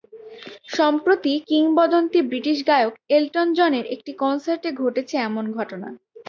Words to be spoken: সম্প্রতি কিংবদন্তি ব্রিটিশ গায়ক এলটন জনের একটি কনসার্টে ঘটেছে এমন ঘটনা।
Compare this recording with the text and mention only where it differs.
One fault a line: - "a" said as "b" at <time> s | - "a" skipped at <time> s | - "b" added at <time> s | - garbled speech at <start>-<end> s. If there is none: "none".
none